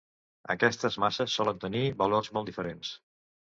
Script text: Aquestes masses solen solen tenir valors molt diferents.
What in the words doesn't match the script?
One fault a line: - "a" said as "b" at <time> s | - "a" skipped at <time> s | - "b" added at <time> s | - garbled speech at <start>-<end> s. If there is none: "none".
- "solen" skipped at 1.6 s